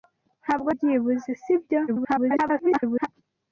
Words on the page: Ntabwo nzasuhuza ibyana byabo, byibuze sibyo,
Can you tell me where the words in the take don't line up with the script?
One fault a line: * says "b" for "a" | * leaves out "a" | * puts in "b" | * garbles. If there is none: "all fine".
* leaves out "nzasuhuza ibyana byabo"
* garbles